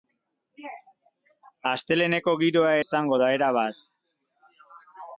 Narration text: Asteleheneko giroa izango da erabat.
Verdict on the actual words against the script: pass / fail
pass